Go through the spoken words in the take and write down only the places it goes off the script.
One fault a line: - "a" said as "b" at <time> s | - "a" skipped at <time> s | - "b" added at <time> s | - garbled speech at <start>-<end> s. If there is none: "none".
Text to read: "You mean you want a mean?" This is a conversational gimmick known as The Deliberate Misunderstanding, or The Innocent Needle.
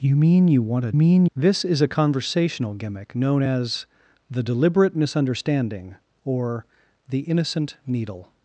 none